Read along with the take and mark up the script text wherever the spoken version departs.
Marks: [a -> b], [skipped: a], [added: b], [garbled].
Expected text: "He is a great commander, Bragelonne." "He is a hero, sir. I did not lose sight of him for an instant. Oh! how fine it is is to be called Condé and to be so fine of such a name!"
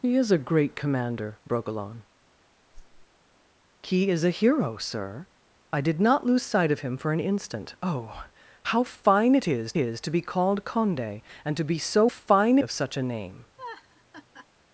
"He is a great commander, Bragelonne." "He is a hero, sir. I did not lose sight of him for an instant. Oh! how fine it is is to be called Condé and to be so fine of such a name!"